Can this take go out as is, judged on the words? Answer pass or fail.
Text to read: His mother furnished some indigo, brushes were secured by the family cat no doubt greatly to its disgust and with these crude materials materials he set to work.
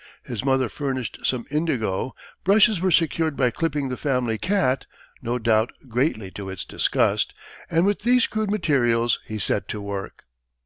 fail